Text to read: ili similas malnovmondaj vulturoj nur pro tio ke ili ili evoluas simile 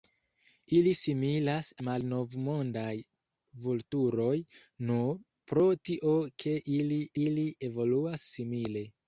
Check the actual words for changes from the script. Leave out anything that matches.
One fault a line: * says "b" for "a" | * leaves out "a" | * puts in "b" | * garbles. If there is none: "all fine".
all fine